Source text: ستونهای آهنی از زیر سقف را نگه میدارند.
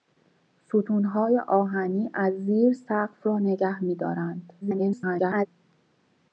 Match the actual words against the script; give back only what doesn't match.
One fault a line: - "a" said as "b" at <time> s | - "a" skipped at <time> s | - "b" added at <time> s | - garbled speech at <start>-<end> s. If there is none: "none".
- garbled speech at 4.6-5.5 s